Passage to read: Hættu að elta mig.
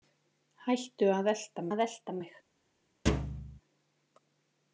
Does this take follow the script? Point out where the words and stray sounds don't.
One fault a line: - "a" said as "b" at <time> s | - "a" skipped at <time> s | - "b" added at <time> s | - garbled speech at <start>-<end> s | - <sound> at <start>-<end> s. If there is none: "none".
- "að elta" added at 1.7 s
- thud at 3.1-3.6 s